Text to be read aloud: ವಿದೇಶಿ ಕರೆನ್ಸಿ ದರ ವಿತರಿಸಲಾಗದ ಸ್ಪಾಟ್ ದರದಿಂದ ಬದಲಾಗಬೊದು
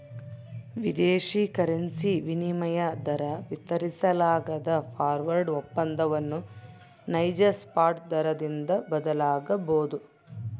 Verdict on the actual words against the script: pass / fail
fail